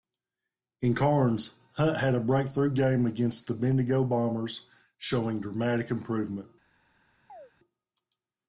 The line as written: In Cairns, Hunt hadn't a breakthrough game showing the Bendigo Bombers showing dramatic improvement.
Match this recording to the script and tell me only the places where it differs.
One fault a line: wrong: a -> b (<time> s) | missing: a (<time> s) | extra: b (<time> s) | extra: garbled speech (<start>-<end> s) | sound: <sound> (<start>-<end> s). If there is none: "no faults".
wrong: hadn't -> had (2.0 s)
wrong: showing -> against (3.0 s)
sound: chirp (7.3-7.5 s)